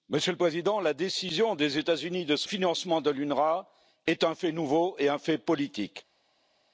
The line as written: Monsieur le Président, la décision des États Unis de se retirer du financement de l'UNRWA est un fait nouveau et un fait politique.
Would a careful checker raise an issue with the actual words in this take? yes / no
yes